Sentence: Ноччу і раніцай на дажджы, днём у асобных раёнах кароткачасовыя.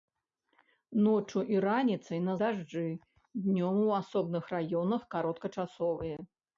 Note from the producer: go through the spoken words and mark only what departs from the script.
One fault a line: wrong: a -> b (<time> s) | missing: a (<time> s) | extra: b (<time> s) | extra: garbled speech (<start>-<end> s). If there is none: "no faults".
no faults